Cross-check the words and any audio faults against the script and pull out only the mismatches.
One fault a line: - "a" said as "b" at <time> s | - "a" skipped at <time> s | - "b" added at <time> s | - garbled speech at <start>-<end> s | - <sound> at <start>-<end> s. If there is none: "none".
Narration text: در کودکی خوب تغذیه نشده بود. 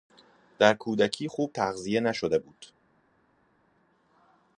none